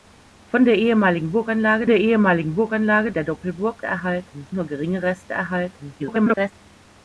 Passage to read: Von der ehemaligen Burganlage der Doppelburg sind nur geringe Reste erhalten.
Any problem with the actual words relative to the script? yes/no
yes